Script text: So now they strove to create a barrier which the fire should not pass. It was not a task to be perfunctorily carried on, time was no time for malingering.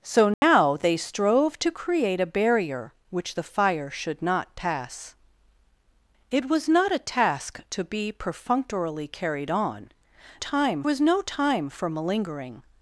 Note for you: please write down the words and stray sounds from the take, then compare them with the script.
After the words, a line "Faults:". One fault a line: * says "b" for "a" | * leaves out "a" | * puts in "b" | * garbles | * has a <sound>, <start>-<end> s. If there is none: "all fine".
So now they strove to create a barrier which the fire should not pass. It was not a task to be perfunctorily carried on, time was no time for malingering.
Faults:
* has a dropout, 0.3-0.4 s